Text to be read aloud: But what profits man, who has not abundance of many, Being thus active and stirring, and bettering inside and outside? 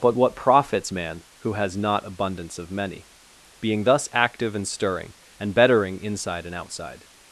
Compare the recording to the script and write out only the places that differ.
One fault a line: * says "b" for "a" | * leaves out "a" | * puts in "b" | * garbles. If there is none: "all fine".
all fine